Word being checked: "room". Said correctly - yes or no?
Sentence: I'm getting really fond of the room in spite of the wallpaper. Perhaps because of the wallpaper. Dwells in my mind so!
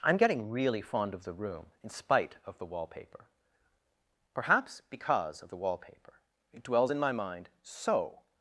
yes